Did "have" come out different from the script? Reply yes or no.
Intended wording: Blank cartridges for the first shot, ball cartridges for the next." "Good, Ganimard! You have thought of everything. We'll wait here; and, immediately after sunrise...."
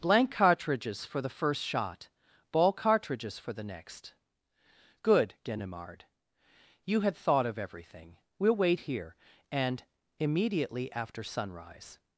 yes